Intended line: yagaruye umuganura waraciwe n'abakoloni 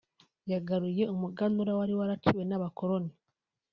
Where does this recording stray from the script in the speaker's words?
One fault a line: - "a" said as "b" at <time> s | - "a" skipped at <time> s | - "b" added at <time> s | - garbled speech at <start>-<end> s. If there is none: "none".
- "wari" added at 1.8 s